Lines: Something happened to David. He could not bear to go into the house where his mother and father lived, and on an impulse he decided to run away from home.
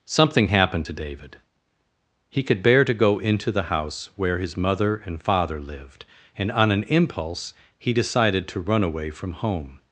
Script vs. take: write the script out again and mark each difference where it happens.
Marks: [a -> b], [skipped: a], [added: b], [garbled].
Something happened to David. He could [skipped: not] bear to go into the house where his mother and father lived, and on an impulse he decided to run away from home.